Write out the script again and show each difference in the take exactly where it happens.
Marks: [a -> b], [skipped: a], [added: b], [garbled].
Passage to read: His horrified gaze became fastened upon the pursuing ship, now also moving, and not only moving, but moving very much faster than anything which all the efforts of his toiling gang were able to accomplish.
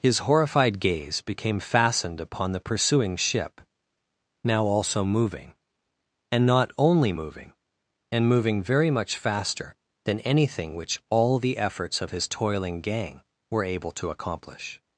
His horrified gaze became fastened upon the pursuing ship, now also moving, and not only moving, [but -> and] moving very much faster than anything which all the efforts of his toiling gang were able to accomplish.